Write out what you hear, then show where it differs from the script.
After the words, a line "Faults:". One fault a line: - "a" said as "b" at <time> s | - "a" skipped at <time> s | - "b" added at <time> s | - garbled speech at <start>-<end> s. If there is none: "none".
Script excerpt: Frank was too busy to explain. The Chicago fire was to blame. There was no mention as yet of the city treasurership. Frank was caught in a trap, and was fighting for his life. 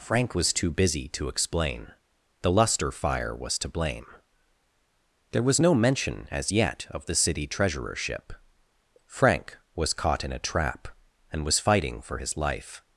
Frank was too busy to explain. The Luster fire was to blame. There was no mention as yet of the city treasurership. Frank was caught in a trap, and was fighting for his life.
Faults:
- "Chicago" said as "Luster" at 2.5 s